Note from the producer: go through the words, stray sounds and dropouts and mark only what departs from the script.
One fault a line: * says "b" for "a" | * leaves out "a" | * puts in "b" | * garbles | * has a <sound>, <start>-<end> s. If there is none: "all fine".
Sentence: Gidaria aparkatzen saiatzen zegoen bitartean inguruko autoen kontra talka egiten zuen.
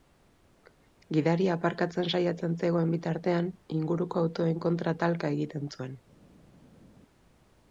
all fine